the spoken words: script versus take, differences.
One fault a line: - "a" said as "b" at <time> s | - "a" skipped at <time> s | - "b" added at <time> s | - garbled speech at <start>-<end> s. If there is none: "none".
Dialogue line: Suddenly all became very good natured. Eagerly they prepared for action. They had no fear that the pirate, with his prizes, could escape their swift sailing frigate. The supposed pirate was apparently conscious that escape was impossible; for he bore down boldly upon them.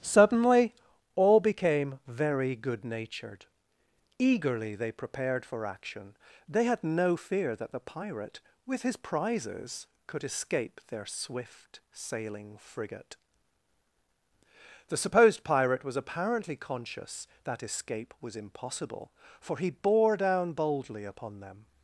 none